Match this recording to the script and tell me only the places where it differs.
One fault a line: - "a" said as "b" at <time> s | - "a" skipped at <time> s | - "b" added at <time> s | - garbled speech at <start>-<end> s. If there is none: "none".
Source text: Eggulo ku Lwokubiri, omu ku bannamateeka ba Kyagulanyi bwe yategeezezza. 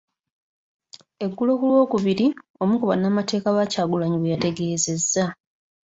none